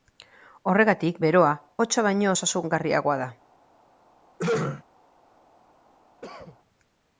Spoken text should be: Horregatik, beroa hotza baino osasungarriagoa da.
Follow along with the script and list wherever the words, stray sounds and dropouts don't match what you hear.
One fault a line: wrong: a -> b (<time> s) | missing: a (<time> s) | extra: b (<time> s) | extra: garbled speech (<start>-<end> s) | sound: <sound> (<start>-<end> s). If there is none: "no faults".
sound: throat clearing (4.4-4.8 s)
sound: cough (6.2-6.6 s)